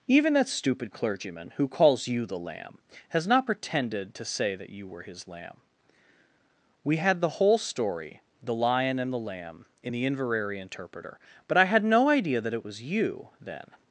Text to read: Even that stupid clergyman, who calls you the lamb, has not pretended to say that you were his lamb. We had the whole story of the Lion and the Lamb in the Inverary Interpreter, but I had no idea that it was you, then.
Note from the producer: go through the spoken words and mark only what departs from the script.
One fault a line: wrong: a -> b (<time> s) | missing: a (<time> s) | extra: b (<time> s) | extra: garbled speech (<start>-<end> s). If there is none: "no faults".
missing: of (8.2 s)